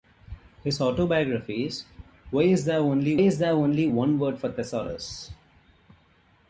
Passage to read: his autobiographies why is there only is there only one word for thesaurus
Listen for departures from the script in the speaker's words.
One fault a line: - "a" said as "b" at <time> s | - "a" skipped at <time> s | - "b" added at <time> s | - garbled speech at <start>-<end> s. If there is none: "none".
none